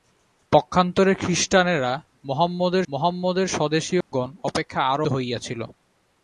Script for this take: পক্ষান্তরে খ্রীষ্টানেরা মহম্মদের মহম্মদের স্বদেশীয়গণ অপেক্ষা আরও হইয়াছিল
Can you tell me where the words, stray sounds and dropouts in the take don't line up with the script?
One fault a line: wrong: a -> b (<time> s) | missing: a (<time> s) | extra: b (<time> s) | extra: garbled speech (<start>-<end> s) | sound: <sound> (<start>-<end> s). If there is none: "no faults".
sound: dropout (4.0-4.1 s)